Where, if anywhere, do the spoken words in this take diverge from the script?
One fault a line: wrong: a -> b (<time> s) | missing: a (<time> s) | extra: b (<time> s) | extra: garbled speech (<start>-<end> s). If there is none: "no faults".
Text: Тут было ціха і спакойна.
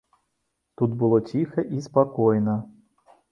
no faults